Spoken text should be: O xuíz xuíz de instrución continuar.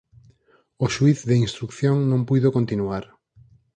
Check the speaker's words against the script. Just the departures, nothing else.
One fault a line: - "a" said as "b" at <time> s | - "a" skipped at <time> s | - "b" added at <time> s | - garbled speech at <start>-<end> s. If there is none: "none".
- "xuíz" skipped at 1.2 s
- "non puido" added at 2.1 s